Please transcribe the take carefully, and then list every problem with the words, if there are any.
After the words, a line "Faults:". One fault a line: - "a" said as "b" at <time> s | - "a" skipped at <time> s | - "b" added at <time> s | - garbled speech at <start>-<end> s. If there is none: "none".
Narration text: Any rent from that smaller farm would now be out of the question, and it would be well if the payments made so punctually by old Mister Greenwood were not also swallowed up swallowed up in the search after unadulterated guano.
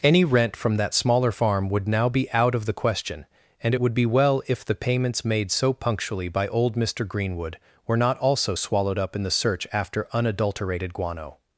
Any rent from that smaller farm would now be out of the question, and it would be well if the payments made so punctually by old Mister Greenwood were not also swallowed up in the search after unadulterated guano.
Faults:
- "swallowed up" skipped at 9.1 s